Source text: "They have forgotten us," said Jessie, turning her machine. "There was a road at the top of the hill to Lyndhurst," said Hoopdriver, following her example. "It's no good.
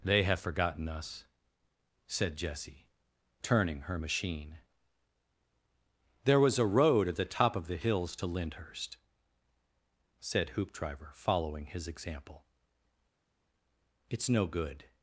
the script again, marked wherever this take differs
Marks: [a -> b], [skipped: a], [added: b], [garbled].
"They have forgotten us," said Jessie, turning her machine. "There was a road at the top of the [hill -> hills] to Lyndhurst," said Hoopdriver, following [her -> his] example. "It's no good.